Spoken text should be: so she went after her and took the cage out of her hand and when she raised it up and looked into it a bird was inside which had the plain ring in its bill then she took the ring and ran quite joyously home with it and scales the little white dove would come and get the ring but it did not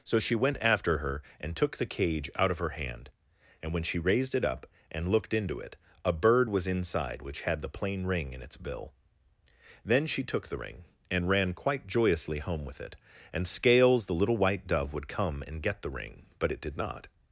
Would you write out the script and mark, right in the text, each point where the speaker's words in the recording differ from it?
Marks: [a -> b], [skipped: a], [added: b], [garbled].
so she went after her and took the cage out of her hand and when she raised it up and looked into it a bird was inside which had the plain ring in its bill then she took the ring and ran quite joyously home with it and scales the little white dove would come and get the ring but it did not